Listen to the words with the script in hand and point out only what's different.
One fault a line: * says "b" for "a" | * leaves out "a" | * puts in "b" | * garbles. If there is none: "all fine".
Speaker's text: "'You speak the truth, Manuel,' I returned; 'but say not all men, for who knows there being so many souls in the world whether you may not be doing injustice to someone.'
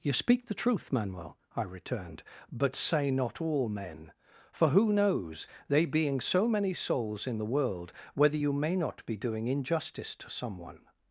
* says "they" for "there"